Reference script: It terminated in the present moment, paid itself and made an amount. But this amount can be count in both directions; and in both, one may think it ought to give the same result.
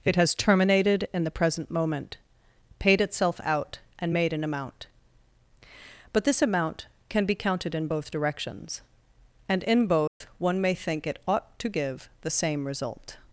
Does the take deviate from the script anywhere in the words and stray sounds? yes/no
yes